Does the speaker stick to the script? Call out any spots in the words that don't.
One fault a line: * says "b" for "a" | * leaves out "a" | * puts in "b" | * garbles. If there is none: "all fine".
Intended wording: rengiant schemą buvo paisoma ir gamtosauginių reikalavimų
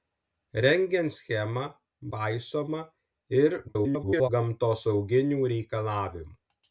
* leaves out "buvo"
* garbles